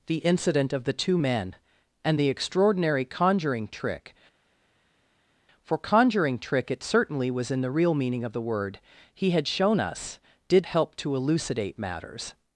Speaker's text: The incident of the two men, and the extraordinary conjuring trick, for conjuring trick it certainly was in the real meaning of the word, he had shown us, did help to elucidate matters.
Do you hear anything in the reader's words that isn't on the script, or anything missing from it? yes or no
no